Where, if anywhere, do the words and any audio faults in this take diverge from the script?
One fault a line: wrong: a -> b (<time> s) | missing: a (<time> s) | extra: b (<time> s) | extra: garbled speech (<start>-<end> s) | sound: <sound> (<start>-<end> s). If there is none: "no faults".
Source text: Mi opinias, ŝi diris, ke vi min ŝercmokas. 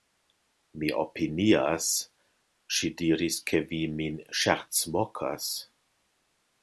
no faults